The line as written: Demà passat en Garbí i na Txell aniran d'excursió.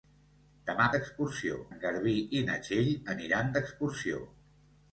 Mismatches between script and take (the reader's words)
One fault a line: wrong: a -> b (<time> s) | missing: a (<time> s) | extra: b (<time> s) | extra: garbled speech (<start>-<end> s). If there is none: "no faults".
wrong: passat -> d'excursió (1.0 s)